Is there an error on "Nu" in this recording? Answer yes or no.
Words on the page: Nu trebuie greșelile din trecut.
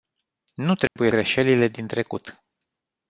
no